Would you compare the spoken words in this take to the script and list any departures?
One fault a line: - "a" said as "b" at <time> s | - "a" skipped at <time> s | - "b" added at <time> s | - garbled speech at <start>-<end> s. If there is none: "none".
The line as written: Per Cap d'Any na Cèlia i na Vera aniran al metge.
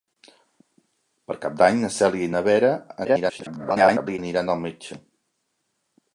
- garbled speech at 3.0-4.2 s